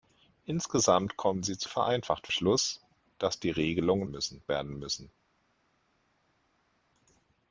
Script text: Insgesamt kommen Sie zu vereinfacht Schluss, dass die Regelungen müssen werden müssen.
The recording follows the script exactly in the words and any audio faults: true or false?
true